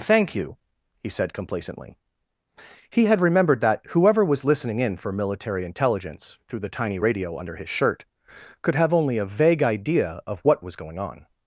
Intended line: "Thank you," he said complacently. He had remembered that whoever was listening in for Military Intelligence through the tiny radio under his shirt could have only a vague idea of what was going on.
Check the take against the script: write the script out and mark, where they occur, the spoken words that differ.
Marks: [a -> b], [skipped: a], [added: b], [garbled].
"Thank you," he said complacently. He had remembered that whoever was listening in for Military Intelligence through the tiny radio under his shirt could have only a vague idea of what was going on.